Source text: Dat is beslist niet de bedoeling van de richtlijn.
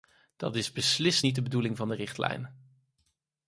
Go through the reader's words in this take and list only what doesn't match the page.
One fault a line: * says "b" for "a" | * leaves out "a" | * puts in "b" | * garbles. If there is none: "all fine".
all fine